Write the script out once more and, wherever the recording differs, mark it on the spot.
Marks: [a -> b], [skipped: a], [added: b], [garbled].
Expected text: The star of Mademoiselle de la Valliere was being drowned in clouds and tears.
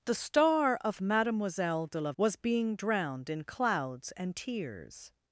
The star of Mademoiselle de la [skipped: Valliere] was being drowned in clouds and tears.